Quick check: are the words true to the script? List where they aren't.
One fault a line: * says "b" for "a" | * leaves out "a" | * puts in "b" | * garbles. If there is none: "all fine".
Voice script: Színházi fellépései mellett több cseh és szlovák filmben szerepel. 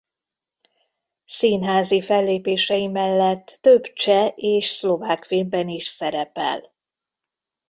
* puts in "is"